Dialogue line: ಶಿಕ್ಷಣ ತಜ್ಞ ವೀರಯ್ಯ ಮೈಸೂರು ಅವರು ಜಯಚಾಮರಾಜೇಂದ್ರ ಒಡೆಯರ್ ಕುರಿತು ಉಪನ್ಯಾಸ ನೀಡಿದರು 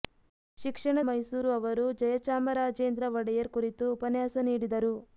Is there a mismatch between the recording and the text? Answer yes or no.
yes